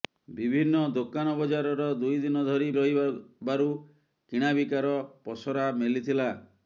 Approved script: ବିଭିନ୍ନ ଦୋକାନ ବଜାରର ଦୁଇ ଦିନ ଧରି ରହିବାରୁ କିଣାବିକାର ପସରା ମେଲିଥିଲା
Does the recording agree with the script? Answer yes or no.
yes